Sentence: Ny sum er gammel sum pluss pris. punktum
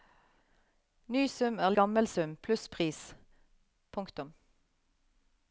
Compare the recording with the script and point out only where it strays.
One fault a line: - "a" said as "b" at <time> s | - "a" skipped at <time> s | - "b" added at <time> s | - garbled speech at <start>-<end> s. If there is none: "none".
none